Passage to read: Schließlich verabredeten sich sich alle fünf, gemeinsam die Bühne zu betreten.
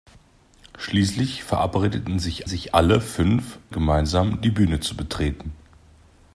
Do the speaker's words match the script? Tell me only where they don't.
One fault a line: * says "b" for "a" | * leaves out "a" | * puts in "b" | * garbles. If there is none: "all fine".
all fine